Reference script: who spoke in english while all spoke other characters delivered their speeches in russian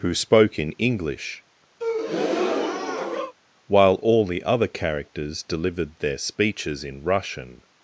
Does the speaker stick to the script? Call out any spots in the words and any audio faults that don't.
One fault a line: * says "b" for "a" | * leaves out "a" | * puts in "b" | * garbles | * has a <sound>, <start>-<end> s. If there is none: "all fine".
* has a breath, 1.8-3.3 s
* says "the" for "spoke"